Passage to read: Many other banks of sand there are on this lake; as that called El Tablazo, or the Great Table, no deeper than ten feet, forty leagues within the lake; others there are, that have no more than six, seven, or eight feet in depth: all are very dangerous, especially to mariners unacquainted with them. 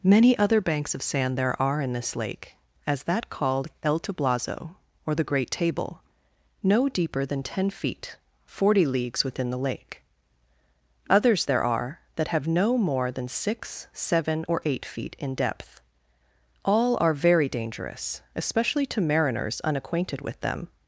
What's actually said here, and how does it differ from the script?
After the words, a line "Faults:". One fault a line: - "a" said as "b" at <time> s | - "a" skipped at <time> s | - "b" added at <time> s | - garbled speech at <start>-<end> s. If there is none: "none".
Many other banks of sand there are in this lake; as that called El Tablazo, or the Great Table, no deeper than ten feet, forty leagues within the lake; others there are, that have no more than six, seven, or eight feet in depth: all are very dangerous, especially to mariners unacquainted with them.
Faults:
- "on" said as "in" at 1.8 s